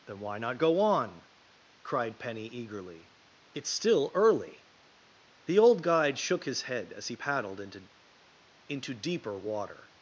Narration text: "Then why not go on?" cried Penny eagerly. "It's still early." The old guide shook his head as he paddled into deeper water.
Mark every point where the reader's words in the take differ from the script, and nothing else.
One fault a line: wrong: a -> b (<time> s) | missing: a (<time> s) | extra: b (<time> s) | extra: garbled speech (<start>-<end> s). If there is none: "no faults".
extra: into (8.7 s)